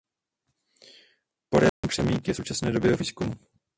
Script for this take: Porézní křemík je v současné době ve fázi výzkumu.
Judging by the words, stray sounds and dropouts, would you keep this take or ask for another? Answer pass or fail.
fail